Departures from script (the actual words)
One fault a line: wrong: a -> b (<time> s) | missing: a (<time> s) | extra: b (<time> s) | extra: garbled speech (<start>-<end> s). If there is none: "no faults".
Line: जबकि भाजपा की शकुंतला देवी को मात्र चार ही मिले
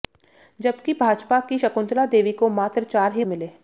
no faults